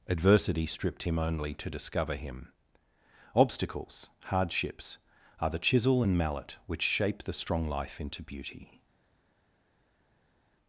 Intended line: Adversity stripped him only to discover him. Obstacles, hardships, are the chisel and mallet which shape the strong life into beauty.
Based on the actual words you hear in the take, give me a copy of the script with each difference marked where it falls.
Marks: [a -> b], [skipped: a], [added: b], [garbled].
Adversity stripped him only to discover him. Obstacles, hardships, are the chisel and mallet which shape the strong life into beauty.